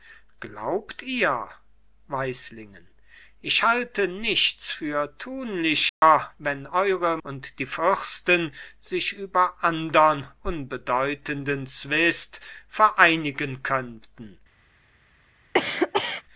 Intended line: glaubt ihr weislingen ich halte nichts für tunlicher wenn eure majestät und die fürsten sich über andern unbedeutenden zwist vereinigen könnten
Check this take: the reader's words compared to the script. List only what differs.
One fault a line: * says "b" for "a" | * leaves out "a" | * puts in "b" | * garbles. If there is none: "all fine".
* leaves out "majestät"